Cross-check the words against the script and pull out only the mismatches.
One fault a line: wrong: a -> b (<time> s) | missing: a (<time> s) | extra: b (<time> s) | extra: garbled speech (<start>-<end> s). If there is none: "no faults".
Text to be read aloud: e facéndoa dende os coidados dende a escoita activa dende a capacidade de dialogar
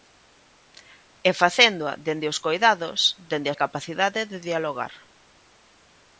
missing: escoita activa dende (3.6 s)